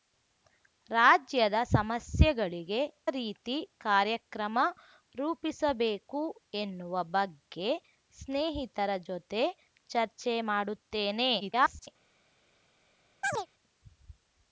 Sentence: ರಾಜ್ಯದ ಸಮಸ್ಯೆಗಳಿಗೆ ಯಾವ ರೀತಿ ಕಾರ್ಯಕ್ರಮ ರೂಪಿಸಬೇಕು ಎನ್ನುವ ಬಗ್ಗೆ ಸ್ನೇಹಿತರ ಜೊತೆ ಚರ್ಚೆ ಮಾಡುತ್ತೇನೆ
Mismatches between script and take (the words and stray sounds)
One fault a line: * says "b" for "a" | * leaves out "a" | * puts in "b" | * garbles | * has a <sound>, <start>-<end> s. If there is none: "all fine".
* leaves out "ಯಾವ"
* garbles
* has a chirp, 13.2-13.5 s